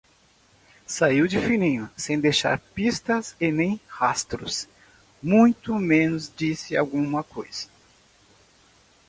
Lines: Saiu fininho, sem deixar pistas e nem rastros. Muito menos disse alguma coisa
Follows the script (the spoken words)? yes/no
no